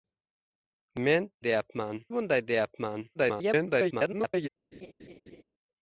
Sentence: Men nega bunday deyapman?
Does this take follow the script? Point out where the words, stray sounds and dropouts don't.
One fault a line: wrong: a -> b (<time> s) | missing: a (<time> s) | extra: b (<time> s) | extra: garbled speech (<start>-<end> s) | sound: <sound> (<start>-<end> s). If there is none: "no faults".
wrong: nega -> deyapman (1.5 s)
extra: garbled speech (3.1-4.5 s)
sound: laugh (4.7-5.4 s)